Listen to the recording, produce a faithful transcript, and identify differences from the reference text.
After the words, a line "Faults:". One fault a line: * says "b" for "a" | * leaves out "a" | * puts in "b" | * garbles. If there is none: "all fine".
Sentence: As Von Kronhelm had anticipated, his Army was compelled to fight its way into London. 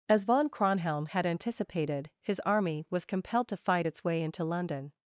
As Von Kronhelm had anticipated, his Army was compelled to fight its way into London.
Faults:
all fine